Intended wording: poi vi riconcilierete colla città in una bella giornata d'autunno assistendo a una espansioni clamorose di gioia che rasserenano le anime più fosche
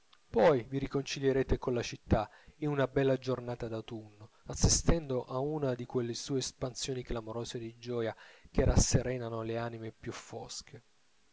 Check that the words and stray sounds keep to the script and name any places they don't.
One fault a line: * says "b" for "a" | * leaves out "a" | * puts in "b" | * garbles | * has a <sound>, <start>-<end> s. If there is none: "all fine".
* puts in "di quelle sue"